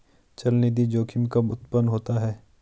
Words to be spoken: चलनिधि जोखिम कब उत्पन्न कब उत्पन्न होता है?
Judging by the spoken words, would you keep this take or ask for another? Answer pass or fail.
fail